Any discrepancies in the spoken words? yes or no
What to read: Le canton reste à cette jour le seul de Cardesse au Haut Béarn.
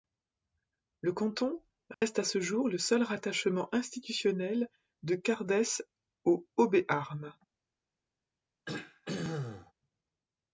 yes